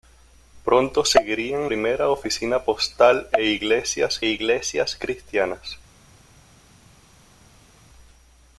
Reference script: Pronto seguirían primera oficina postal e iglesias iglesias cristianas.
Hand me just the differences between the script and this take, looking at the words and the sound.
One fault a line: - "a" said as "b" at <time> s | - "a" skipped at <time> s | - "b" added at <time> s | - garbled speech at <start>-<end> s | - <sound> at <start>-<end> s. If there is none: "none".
none